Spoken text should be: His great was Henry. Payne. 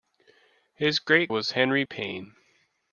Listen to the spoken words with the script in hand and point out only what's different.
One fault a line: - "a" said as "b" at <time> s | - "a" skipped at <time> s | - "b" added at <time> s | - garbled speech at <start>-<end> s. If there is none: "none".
none